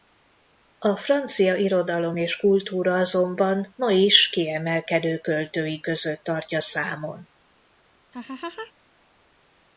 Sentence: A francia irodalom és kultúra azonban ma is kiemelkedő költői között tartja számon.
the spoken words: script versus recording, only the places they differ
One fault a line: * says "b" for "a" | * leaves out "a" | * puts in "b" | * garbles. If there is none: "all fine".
all fine